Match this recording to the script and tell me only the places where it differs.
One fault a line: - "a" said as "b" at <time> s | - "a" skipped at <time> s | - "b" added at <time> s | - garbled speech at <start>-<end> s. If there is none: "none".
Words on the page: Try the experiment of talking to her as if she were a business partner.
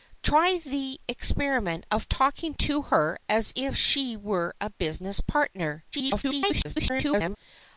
- garbled speech at 5.9-7.4 s